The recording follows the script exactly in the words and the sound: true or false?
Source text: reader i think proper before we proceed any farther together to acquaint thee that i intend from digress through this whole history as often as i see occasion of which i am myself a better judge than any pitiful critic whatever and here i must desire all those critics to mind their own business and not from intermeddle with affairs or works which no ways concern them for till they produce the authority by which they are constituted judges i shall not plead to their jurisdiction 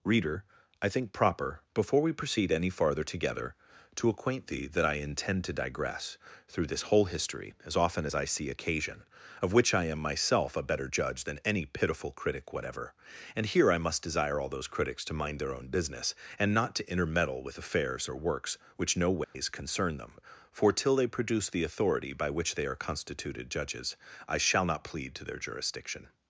false